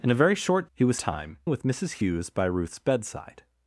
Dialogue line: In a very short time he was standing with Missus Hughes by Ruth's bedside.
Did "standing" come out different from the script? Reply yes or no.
yes